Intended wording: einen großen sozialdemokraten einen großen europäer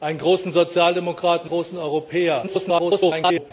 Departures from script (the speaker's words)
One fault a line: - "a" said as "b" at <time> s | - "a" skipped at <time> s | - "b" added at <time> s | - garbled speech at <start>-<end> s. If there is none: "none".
- "einen" skipped at 1.5 s
- garbled speech at 2.4-3.5 s